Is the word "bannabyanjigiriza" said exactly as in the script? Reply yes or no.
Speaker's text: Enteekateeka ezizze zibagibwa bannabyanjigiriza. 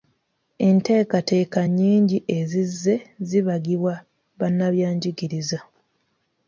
yes